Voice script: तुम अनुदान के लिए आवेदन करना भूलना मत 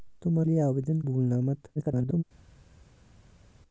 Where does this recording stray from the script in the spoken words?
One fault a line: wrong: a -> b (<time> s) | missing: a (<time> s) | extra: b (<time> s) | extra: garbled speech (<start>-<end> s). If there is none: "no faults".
missing: अनुदान के (0.4 s)
missing: करना (1.0 s)
extra: garbled speech (1.8-2.2 s)